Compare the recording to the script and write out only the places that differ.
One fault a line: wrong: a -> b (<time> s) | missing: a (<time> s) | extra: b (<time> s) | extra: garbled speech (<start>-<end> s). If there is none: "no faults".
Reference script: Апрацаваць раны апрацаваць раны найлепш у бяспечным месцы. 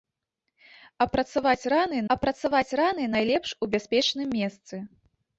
no faults